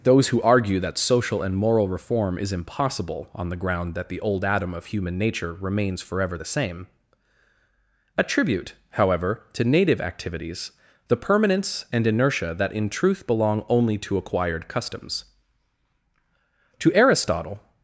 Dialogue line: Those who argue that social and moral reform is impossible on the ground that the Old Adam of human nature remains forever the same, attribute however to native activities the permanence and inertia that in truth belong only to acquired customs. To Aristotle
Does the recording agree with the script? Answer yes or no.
yes